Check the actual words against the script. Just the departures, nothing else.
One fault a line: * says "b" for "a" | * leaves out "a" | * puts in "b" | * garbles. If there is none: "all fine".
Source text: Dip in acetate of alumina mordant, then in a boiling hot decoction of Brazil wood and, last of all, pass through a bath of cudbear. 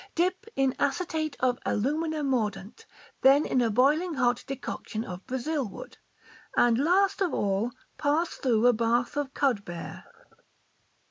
all fine